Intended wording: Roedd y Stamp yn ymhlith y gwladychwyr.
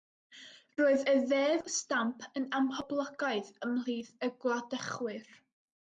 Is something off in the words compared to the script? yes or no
yes